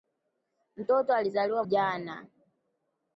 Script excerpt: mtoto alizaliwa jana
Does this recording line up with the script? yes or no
yes